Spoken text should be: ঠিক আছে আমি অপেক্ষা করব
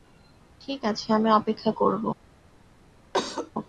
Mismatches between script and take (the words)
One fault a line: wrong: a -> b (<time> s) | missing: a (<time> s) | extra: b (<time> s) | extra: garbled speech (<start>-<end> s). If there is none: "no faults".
no faults